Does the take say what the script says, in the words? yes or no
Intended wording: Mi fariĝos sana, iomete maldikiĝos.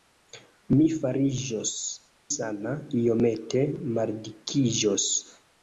yes